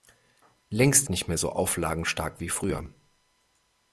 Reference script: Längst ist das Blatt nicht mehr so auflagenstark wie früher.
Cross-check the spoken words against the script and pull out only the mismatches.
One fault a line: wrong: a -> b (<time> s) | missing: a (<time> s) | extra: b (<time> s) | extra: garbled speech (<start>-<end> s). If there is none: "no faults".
missing: ist das Blatt (1.1 s)